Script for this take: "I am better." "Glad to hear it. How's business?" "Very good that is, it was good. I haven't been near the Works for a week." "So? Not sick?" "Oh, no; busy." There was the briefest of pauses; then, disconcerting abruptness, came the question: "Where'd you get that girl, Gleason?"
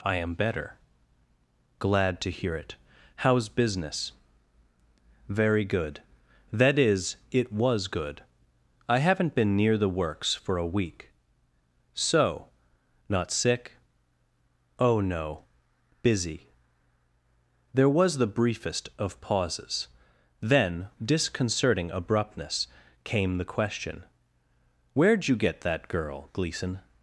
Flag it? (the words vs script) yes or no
no